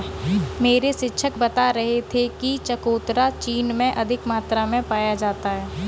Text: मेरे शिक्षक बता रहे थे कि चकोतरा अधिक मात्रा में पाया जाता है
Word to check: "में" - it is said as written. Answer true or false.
true